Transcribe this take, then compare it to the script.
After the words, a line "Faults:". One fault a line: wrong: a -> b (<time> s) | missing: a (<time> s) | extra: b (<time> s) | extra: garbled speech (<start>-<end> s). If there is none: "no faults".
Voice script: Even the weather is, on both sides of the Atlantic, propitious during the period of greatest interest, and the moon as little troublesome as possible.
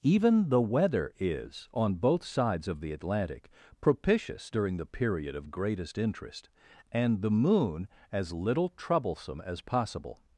Even the weather is, on both sides of the Atlantic, propitious during the period of greatest interest, and the moon as little troublesome as possible.
Faults:
no faults